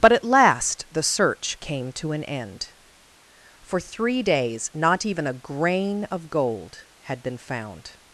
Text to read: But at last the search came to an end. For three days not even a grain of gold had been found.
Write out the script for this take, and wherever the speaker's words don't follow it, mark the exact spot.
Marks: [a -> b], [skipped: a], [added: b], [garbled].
But at last the search came to an end. For three days not even a grain of gold had been found.